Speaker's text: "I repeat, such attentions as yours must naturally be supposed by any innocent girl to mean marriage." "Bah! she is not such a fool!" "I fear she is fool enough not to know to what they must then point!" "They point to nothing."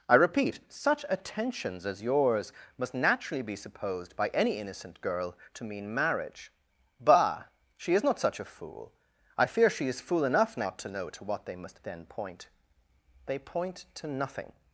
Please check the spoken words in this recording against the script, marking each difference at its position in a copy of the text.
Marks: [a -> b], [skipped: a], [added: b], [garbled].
"I repeat, such attentions as yours must naturally be supposed by any innocent girl to mean marriage." "Bah! she is not such a fool!" "I fear she is fool enough not to know to what they must then point!" "They point to nothing."